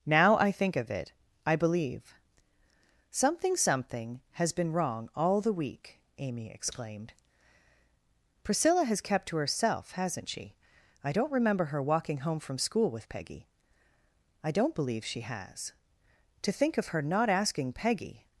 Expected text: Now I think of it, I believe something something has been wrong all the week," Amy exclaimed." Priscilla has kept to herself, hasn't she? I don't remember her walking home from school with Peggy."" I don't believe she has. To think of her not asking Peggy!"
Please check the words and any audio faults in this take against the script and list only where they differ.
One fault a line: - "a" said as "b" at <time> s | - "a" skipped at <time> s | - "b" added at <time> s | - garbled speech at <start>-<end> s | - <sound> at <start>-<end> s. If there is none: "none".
none